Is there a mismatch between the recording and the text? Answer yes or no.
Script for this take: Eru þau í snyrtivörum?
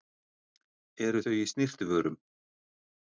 no